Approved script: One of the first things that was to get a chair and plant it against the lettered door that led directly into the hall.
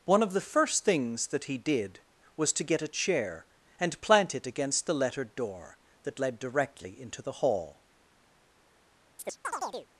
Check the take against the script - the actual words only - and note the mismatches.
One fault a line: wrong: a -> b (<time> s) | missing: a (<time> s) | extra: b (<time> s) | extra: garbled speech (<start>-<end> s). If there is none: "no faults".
extra: he did (1.4 s)